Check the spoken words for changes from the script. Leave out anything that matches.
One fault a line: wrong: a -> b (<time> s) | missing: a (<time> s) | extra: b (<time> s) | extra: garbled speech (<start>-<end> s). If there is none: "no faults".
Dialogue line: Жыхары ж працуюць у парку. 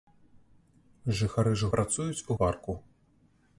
no faults